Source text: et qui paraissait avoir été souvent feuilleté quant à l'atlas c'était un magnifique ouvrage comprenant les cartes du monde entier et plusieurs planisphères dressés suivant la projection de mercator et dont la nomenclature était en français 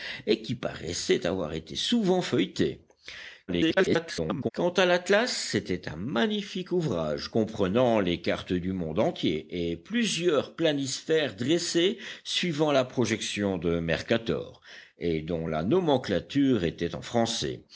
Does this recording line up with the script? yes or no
no